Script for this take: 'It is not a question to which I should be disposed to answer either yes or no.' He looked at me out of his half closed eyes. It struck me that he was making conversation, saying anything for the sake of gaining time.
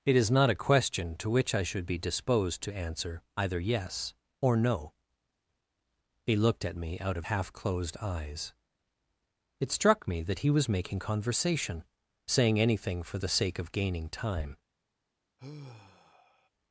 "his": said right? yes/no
no